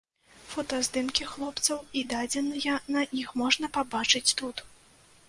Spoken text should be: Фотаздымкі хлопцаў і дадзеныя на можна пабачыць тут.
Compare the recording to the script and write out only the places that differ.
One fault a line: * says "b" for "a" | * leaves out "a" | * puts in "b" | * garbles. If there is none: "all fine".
* puts in "іх"